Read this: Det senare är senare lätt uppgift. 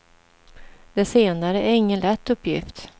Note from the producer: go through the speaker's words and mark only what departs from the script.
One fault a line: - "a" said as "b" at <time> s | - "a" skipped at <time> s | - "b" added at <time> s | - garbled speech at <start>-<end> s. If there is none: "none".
- "senare" said as "ingen" at 1.7 s